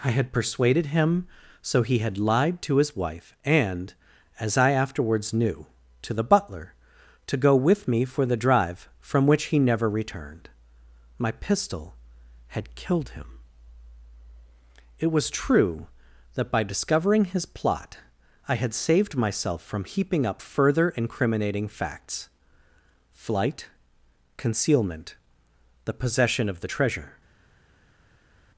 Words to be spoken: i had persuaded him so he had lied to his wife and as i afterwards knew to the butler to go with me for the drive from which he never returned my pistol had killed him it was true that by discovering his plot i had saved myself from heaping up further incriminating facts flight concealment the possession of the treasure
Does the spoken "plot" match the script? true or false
true